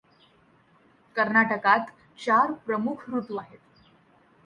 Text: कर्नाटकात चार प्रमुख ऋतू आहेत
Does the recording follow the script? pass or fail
pass